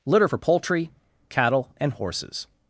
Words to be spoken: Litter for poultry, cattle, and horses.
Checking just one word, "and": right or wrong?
right